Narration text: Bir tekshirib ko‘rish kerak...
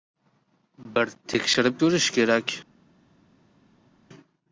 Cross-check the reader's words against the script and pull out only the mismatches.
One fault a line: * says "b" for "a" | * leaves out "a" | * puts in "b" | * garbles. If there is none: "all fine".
all fine